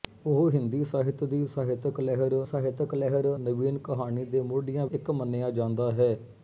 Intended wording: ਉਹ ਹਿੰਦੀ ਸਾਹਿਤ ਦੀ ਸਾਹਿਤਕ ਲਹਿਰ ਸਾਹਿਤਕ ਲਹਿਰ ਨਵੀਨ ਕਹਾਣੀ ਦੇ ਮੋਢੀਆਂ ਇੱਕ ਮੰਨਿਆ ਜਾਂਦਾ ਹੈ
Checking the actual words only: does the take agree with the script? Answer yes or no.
yes